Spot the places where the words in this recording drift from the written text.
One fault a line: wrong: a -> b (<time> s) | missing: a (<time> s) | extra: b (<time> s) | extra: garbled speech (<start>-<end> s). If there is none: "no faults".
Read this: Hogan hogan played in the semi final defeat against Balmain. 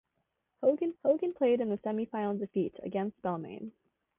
no faults